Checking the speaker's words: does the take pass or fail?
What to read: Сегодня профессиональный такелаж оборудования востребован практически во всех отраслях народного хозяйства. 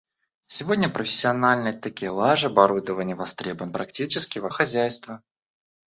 fail